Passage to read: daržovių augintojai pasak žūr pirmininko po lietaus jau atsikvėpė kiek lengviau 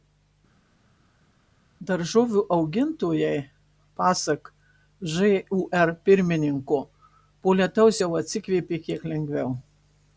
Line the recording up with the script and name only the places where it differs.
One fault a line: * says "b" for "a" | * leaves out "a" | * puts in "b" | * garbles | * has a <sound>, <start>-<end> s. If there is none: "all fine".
all fine